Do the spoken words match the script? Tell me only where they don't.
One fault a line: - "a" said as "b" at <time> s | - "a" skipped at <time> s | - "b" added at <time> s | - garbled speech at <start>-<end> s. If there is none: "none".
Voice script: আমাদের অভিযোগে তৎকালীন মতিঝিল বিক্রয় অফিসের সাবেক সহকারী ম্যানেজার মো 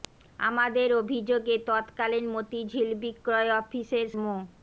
- "সাবেক সহকারী ম্যানেজার" skipped at 4.0 s